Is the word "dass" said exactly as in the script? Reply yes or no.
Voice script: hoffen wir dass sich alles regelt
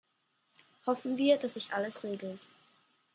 yes